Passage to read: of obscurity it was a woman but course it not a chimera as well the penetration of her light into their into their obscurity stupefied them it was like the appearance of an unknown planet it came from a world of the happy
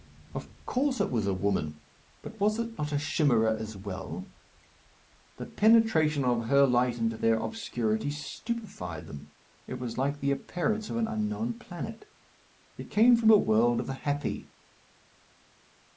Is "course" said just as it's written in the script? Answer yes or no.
no